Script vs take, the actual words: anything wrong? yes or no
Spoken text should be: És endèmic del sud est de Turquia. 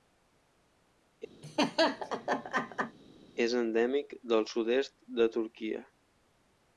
no